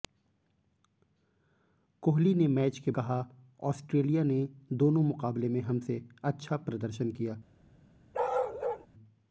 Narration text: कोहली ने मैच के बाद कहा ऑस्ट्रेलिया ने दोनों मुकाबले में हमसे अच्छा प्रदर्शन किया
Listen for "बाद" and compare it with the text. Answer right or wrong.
wrong